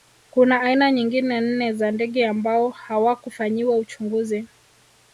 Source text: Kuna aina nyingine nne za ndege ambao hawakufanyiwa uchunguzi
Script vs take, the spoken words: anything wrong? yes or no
no